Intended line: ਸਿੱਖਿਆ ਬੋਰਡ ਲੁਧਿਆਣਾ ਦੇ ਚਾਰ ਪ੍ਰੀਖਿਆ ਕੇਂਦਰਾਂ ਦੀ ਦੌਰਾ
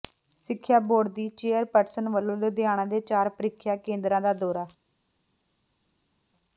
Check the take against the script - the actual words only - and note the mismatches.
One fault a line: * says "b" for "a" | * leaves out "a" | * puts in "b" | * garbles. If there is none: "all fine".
* puts in "ਦੀ ਚੇਅਰਪਰਸਨ ਵੱਲੋਂ"
* says "ਦਾ" for "ਦੀ"